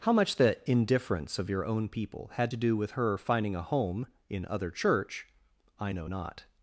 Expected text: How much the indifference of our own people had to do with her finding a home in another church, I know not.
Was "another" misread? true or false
true